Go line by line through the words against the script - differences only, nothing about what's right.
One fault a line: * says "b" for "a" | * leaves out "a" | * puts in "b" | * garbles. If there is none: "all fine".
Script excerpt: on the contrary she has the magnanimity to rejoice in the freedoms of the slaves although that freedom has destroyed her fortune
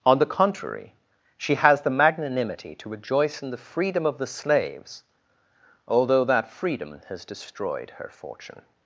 * says "freedom" for "freedoms"